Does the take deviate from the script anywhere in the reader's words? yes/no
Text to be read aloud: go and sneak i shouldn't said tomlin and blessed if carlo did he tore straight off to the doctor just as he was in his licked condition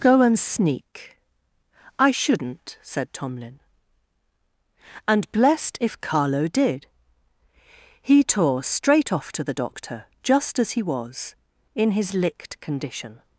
no